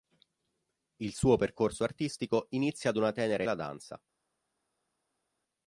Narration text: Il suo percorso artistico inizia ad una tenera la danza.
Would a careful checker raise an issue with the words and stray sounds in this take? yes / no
no